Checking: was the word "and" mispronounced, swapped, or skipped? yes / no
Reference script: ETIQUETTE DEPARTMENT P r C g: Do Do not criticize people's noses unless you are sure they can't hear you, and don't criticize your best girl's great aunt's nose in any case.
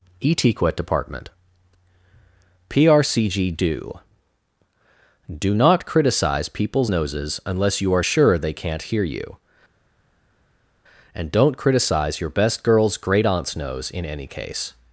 no